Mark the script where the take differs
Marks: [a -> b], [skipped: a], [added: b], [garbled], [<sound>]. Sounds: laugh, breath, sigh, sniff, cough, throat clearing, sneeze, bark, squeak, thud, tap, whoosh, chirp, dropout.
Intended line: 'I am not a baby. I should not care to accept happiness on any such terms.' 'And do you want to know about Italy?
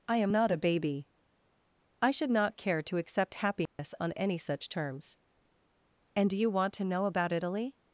'I am not a baby. I should not care to accept happiness [dropout] on any such terms.' 'And do you want to know about Italy?